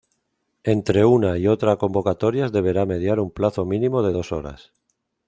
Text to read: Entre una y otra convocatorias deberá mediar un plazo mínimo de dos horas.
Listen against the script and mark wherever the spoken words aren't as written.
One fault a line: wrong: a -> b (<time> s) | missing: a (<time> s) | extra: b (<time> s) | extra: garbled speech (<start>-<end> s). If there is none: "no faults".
no faults